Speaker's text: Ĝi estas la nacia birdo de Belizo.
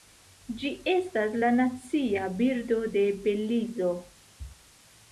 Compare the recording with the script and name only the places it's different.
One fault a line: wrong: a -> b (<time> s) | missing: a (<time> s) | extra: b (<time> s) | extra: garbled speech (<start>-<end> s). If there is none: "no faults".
no faults